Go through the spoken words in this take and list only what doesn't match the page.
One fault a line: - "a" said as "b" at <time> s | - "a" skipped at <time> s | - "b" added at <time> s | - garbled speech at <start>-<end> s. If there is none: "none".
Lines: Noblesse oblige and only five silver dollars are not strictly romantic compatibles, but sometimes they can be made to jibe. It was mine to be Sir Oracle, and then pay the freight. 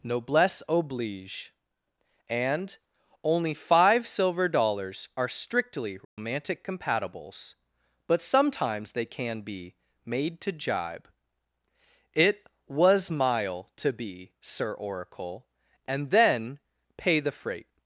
- "not" skipped at 5.3 s
- "mine" said as "mile" at 13.1 s